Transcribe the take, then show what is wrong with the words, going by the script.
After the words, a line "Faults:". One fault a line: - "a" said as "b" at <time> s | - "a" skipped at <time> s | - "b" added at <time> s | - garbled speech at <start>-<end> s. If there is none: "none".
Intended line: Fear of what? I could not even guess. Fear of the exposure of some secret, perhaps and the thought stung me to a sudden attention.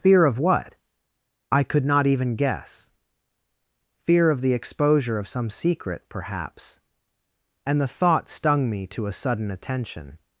Fear of what? I could not even guess. Fear of the exposure of some secret, perhaps and the thought stung me to a sudden attention.
Faults:
none